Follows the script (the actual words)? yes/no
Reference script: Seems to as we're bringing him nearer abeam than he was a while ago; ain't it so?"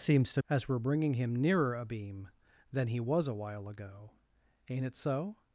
yes